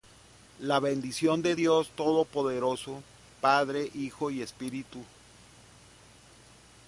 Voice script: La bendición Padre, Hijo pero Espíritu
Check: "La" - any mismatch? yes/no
no